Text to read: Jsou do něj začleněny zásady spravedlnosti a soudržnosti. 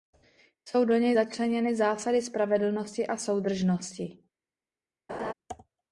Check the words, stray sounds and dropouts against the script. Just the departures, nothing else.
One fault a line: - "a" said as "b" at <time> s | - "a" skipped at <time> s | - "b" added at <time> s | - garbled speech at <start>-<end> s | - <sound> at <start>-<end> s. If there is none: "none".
- laugh at 5.1-5.3 s